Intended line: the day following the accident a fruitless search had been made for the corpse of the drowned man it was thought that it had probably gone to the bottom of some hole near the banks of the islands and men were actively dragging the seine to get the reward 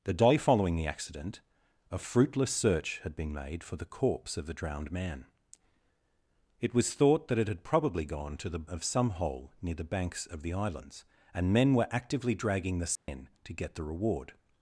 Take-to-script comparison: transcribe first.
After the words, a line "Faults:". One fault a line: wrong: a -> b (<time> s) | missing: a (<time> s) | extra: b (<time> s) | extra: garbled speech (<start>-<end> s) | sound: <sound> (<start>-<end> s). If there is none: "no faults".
the day following the accident a fruitless search had been made for the corpse of the drowned man it was thought that it had probably gone to the of some hole near the banks of the islands and men were actively dragging the seine to get the reward
Faults:
missing: bottom (8.7 s)
sound: dropout (13.0-13.1 s)